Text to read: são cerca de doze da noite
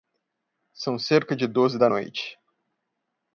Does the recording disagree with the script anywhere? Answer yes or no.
no